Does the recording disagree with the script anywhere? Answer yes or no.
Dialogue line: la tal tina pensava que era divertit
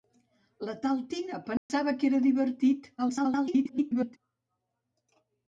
yes